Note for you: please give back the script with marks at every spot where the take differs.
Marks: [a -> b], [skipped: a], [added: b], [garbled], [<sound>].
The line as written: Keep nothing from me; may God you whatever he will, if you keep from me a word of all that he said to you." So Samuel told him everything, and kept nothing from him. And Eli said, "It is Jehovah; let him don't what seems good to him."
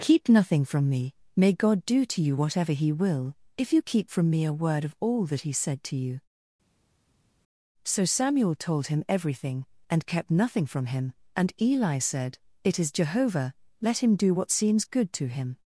Keep nothing from me; may God [added: do to] you whatever he will, if you keep from me a word of all that he said to you." So Samuel told him everything, and kept nothing from him. And Eli said, "It is Jehovah; let him [don't -> do] what seems good to him."